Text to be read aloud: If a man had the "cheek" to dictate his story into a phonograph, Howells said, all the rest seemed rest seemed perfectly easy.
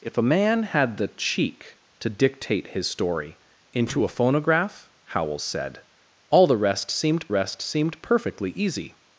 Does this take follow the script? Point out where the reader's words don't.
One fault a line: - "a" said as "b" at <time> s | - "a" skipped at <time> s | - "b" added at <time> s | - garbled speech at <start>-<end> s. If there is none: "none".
none